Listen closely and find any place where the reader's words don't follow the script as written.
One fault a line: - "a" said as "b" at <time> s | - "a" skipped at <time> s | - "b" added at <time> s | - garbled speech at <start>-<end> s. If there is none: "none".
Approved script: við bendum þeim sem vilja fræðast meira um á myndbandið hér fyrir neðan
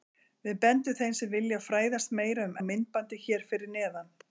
none